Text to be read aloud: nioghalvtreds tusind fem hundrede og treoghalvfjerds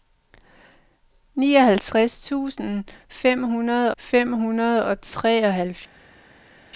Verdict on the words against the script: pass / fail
fail